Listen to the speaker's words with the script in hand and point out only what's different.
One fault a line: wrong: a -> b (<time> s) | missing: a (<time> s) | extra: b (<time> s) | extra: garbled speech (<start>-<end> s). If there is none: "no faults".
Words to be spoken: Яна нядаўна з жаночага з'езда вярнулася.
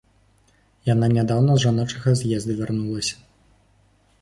no faults